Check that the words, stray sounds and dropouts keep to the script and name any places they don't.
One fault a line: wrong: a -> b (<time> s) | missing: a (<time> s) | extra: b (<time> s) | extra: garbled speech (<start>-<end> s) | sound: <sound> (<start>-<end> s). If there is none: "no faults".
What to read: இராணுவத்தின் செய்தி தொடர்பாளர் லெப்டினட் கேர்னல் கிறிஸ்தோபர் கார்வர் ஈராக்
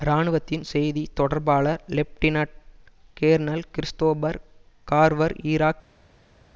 no faults